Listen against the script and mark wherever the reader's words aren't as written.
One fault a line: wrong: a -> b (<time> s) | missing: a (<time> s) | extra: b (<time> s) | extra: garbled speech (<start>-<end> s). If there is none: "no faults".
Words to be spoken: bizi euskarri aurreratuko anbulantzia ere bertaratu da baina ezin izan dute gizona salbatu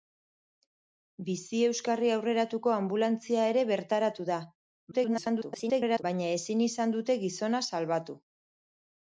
extra: garbled speech (4.9-6.0 s)